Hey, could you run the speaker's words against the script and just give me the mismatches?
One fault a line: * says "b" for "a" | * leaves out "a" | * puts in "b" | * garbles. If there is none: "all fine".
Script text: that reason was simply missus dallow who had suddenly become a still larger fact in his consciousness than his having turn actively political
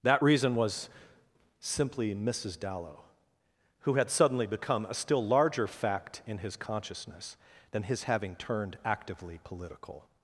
* says "turned" for "turn"